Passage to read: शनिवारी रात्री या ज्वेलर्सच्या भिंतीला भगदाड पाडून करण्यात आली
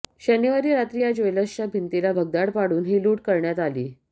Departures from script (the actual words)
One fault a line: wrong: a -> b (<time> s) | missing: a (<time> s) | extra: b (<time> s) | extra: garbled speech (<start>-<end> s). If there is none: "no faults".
extra: ही लूट (2.8 s)